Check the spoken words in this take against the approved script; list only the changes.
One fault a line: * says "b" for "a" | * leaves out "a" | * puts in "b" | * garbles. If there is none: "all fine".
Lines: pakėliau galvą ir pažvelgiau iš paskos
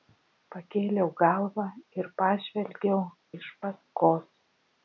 all fine